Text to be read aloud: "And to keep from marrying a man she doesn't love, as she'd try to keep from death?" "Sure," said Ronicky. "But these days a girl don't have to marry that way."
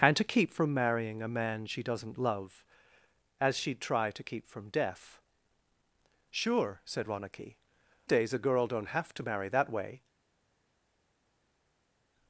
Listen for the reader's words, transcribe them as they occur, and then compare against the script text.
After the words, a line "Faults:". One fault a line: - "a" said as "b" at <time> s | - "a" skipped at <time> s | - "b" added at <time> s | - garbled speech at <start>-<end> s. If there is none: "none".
"And to keep from marrying a man she doesn't love, as she'd try to keep from death?" "Sure," said Ronicky. "Days a girl don't have to marry that way."
Faults:
- "But these" skipped at 7.6 s